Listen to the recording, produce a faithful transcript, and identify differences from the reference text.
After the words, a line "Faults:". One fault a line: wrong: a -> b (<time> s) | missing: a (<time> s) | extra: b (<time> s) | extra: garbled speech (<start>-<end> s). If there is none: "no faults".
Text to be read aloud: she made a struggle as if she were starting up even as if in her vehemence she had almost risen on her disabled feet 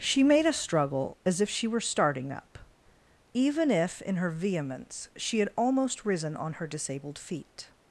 she made a struggle as if she were starting up even if in her vehemence she had almost risen on her disabled feet
Faults:
missing: as (3.7 s)